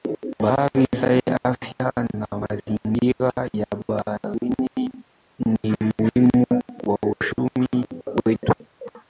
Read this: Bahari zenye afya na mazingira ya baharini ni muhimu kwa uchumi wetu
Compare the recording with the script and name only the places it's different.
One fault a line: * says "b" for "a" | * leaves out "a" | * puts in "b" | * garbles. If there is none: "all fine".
all fine